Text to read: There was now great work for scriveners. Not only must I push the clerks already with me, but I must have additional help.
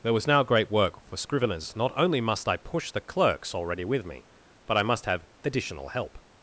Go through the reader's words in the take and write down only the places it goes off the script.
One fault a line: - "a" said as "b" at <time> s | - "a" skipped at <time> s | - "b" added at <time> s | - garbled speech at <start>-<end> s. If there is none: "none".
none